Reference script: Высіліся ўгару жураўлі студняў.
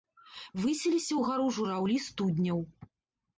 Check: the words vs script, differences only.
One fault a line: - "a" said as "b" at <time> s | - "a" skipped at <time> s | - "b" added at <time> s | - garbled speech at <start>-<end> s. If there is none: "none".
none